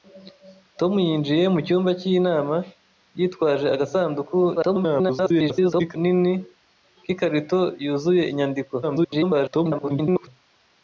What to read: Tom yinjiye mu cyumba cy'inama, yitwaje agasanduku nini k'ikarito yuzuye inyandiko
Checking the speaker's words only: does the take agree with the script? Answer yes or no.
no